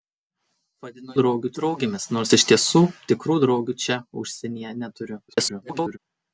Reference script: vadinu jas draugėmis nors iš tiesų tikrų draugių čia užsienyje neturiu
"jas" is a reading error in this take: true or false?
true